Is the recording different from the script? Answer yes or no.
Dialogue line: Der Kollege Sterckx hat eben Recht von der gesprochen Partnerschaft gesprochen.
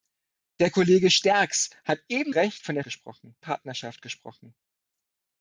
no